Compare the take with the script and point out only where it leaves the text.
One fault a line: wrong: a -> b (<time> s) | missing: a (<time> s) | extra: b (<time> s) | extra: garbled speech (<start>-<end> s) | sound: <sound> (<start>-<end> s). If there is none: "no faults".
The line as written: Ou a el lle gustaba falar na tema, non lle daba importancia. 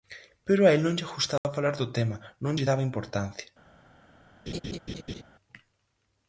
wrong: Ou -> Pero (0.5 s)
extra: non (0.8 s)
sound: dropout (1.4-1.4 s)
wrong: na -> do (1.8 s)
sound: laugh (4.5-5.2 s)